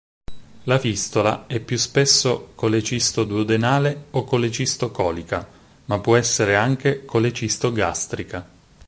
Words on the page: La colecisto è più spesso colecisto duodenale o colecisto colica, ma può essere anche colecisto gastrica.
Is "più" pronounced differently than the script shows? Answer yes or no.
no